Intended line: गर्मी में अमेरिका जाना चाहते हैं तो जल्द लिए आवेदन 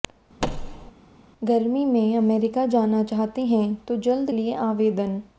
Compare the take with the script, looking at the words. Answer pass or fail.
pass